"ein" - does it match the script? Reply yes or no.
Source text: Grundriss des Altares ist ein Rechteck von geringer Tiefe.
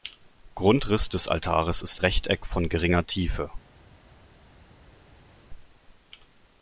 no